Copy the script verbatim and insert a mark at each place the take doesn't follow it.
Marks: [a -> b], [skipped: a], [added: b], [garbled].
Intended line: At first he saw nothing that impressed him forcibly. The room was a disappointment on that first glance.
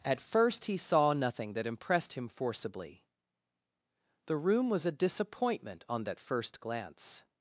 At first he saw nothing that impressed him forcibly. The room was a disappointment on that first glance.